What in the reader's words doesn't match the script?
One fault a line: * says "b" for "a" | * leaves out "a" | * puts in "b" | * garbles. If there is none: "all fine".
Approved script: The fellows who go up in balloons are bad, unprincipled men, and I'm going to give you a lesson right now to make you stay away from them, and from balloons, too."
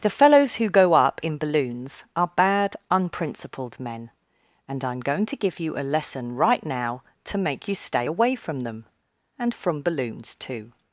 all fine